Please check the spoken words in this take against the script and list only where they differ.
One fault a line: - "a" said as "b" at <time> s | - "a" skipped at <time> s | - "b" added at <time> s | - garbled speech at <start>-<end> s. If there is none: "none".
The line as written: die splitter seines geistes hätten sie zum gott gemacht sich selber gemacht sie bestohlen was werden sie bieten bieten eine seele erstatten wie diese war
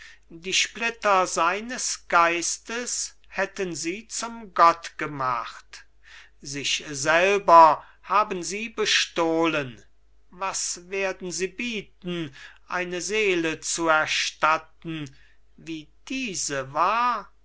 - "gemacht" said as "haben" at 8.0 s
- "bieten" skipped at 12.3 s
- "zu" added at 13.6 s